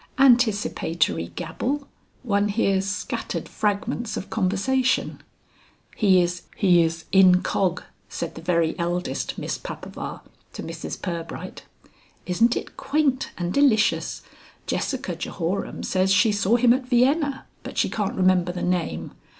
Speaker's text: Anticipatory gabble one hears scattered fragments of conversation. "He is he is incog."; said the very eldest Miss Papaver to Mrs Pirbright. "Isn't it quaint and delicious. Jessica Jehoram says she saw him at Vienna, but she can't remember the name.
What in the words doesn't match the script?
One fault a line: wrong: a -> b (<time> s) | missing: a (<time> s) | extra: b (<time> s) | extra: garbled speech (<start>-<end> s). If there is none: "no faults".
no faults